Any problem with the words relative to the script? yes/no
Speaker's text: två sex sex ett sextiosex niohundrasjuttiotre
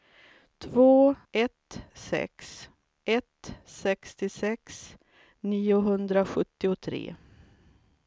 yes